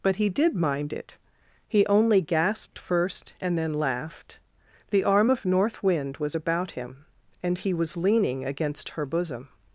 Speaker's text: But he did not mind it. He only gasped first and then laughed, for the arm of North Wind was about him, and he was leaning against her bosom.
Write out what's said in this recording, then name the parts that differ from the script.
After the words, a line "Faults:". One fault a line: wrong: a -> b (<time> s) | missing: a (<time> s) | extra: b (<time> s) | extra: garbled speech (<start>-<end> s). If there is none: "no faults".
But he did mind it. He only gasped first and then laughed, the arm of North Wind was about him, and he was leaning against her bosom.
Faults:
missing: not (0.6 s)
missing: for (4.4 s)